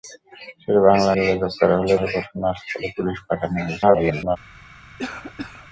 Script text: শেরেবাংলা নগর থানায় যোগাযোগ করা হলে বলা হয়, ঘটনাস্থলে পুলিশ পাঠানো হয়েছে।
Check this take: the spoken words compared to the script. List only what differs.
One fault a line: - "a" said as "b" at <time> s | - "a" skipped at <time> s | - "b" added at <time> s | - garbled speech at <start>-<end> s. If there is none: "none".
- "নগর থানায়" skipped at 1.1 s
- "বলা" skipped at 2.0 s
- garbled speech at 3.8-4.4 s